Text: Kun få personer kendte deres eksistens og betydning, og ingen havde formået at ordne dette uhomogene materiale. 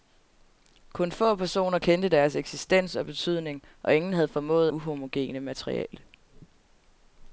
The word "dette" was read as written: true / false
false